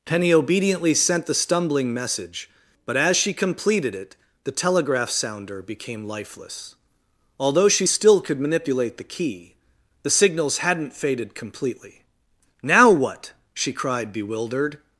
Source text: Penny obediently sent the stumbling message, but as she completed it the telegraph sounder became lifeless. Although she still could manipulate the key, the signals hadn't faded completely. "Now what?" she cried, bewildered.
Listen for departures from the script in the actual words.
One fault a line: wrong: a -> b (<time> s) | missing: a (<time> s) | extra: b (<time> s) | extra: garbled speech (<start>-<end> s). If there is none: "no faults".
no faults